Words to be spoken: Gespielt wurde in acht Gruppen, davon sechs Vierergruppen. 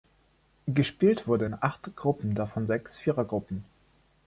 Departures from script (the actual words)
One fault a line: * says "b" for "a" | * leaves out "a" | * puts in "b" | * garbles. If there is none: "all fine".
all fine